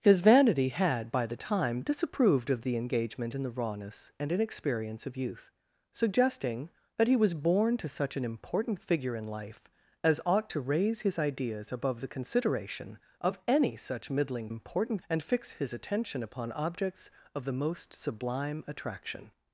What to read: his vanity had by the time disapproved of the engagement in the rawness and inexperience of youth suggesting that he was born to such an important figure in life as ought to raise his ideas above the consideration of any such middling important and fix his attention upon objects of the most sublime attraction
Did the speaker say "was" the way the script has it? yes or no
yes